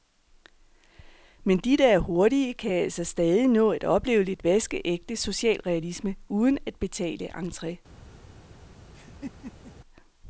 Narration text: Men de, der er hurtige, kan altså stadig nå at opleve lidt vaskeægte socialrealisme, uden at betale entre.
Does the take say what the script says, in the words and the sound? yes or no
no